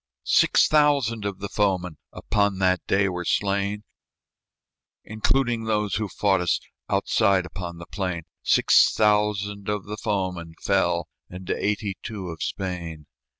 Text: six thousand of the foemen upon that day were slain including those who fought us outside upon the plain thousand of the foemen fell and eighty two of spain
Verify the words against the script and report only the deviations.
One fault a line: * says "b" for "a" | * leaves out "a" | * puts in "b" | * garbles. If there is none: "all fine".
* puts in "six"